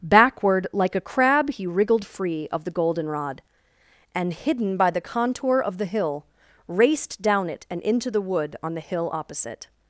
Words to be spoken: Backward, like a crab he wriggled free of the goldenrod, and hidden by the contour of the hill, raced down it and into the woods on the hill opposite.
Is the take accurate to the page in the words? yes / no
no